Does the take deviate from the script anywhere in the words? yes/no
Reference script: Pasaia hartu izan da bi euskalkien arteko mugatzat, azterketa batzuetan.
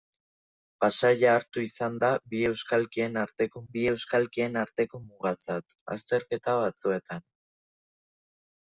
yes